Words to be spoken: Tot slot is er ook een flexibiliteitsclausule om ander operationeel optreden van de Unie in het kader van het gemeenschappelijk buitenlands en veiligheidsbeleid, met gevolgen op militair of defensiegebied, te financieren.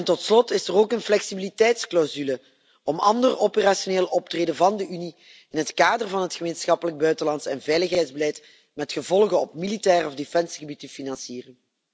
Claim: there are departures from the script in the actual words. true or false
false